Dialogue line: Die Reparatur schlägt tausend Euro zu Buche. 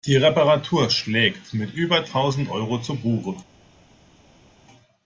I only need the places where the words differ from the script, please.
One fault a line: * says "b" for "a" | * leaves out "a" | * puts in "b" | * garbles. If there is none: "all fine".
* puts in "mit über"